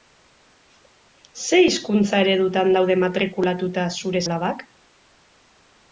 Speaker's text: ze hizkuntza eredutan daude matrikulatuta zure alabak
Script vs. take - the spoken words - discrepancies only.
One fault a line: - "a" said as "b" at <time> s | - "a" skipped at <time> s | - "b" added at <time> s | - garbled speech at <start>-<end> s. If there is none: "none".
none